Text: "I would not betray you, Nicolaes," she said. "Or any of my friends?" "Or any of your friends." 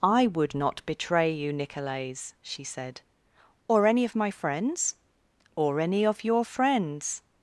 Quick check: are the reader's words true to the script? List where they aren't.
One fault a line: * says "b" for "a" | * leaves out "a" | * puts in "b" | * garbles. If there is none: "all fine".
all fine